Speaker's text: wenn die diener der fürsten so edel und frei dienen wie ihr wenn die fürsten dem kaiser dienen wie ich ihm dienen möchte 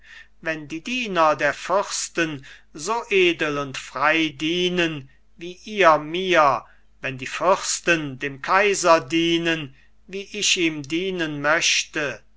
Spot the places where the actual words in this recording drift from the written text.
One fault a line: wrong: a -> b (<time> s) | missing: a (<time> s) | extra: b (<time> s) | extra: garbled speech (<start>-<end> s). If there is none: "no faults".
extra: mir (6.0 s)